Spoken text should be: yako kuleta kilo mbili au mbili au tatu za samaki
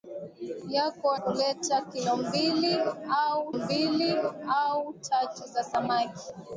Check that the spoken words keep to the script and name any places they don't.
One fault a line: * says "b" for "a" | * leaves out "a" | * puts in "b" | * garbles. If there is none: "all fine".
all fine